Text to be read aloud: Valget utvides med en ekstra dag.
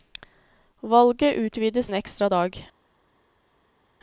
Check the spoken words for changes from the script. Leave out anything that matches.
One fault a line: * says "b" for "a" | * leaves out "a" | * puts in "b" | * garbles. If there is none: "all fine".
* leaves out "med"